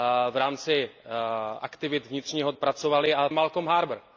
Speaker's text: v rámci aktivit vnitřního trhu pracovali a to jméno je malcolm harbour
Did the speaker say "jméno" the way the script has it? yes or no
no